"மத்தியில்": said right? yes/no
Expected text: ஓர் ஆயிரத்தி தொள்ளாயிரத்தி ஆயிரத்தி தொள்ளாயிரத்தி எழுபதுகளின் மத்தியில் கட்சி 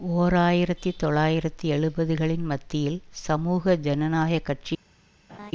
no